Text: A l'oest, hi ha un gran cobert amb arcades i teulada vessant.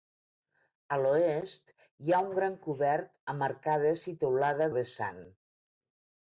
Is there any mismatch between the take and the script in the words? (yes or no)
no